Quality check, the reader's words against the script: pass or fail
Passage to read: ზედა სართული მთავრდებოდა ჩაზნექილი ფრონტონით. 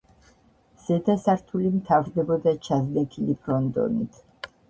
pass